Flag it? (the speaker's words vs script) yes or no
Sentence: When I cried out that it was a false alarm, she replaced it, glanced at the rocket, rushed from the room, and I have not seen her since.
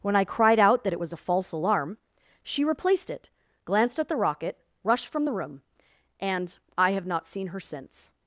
no